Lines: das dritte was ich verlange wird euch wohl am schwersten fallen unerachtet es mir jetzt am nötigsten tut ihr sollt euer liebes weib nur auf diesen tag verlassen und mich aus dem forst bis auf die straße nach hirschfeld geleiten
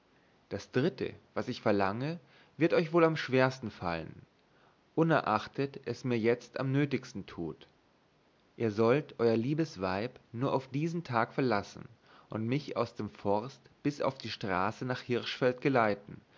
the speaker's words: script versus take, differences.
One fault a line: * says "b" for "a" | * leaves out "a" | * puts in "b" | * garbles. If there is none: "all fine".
all fine